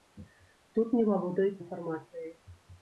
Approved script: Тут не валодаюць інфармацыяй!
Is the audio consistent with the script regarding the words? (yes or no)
yes